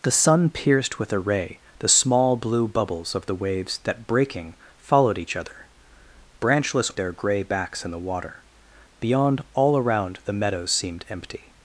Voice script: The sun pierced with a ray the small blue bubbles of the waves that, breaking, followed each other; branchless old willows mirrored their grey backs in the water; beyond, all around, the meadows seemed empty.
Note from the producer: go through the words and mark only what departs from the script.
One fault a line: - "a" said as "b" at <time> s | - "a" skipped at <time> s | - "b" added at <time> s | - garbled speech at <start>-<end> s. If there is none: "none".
- "old willows mirrored" skipped at 6.9 s